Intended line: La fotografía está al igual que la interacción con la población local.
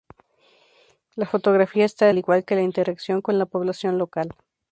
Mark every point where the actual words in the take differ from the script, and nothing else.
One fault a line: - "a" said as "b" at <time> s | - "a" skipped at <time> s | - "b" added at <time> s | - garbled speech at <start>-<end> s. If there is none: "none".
none